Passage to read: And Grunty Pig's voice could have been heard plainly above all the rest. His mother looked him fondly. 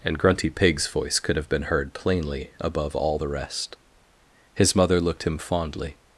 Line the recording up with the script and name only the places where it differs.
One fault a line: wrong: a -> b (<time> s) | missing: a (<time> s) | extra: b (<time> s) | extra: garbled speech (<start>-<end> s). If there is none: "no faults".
no faults